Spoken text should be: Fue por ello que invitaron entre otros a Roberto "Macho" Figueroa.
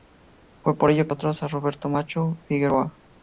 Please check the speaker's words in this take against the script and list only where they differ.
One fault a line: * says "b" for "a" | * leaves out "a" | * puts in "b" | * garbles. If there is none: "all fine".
* leaves out "invitaron entre"